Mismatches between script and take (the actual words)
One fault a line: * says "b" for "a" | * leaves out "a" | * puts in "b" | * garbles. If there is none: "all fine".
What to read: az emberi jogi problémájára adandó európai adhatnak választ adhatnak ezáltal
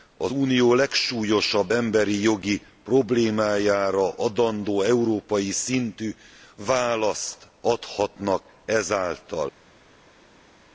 * puts in "unió legsúlyosabb"
* says "szintű" for "adhatnak"